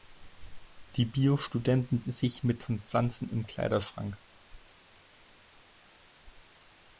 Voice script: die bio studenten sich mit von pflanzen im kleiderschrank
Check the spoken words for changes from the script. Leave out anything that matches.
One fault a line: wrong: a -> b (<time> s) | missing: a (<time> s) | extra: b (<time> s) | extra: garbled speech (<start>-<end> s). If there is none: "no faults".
no faults